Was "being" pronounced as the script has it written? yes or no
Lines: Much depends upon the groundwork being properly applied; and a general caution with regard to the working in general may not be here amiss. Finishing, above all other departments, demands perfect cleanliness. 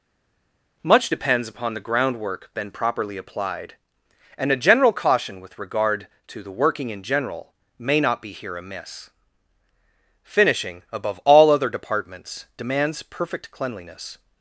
no